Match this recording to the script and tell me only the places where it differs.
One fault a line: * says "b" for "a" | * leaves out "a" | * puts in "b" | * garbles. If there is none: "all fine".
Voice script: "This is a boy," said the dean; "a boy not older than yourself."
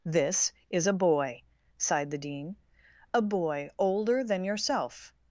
* says "sighed" for "said"
* leaves out "not"